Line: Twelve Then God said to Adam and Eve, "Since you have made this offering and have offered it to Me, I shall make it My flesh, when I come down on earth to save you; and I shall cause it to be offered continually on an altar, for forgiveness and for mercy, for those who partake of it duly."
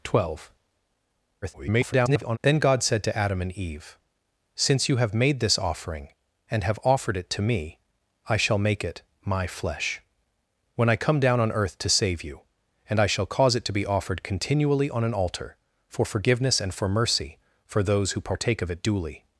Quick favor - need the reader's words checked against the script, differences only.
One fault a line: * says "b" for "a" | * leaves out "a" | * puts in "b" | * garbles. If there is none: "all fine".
* garbles